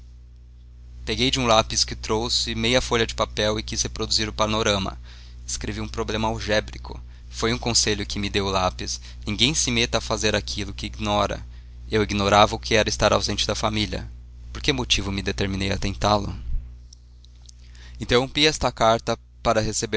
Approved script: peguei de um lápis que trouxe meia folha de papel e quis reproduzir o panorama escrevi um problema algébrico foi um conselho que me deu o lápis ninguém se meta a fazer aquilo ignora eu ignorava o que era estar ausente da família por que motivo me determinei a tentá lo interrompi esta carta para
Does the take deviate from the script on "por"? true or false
false